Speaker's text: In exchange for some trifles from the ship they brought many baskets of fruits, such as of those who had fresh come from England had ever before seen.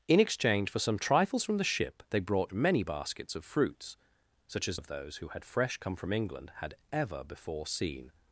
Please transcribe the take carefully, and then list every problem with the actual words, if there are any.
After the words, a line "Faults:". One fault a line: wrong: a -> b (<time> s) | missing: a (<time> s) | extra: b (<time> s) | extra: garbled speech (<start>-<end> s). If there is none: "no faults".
In exchange for some trifles from the ship they brought many baskets of fruits, such as of those who had fresh come from England had ever before seen.
Faults:
no faults